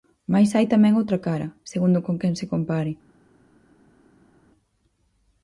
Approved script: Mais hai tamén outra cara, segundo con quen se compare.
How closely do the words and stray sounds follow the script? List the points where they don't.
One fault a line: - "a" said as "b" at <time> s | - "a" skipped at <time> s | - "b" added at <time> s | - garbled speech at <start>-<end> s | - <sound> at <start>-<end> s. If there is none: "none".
none